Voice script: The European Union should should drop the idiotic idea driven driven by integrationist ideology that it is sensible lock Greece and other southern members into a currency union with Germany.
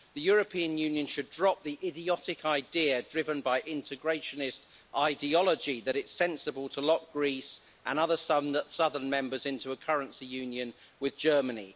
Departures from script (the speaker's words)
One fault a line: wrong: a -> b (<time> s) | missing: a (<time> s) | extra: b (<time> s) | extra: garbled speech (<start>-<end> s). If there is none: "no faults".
missing: should (1.3 s)
missing: driven (3.4 s)
extra: to (6.7 s)